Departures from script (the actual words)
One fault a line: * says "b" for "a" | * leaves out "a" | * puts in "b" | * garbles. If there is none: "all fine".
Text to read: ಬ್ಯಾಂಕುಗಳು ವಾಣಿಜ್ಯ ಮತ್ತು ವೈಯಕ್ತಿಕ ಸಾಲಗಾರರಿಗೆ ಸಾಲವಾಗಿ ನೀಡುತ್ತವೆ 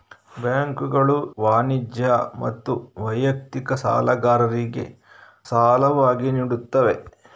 all fine